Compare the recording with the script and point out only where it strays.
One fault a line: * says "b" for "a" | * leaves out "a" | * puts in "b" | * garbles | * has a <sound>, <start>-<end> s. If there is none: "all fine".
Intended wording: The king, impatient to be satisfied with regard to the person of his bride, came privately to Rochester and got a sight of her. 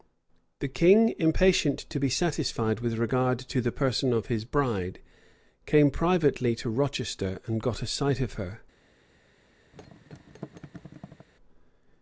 * has a thud, 9.7-11.3 s